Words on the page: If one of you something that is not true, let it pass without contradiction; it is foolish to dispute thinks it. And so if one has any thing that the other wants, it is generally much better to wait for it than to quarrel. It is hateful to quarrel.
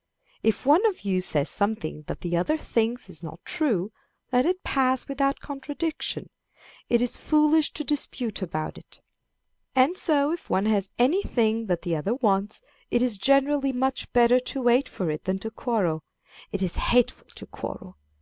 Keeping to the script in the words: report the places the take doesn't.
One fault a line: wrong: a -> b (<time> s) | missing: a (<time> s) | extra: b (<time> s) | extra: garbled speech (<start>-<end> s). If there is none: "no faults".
extra: says (1.2 s)
extra: the other thinks (2.2 s)
wrong: thinks -> about (8.4 s)